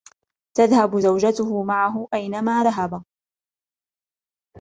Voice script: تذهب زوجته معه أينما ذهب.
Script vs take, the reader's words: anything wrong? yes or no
no